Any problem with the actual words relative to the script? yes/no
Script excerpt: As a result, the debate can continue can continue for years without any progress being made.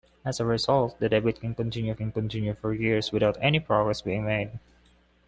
no